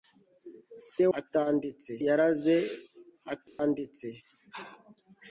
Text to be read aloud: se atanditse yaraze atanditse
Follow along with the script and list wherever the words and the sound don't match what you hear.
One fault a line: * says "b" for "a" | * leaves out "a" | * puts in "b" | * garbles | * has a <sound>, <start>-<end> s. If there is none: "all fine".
* has a dropout, 3.5-3.6 s